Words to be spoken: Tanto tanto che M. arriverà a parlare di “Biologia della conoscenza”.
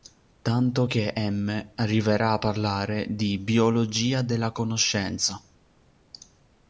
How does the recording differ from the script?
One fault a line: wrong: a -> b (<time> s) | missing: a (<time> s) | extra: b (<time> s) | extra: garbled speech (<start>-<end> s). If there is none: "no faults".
missing: tanto (0.9 s)